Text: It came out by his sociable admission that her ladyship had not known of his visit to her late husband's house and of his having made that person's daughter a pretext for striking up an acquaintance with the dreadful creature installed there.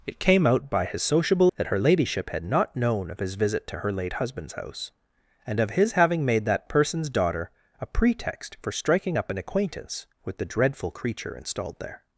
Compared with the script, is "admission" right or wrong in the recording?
wrong